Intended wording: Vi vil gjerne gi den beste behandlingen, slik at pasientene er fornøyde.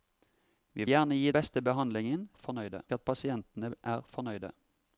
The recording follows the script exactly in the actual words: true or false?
false